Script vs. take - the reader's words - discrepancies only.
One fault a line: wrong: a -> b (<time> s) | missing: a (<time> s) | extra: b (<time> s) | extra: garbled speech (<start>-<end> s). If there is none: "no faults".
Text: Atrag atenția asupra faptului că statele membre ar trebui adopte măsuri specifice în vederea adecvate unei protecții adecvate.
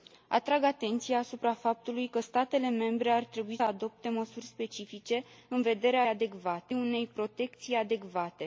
no faults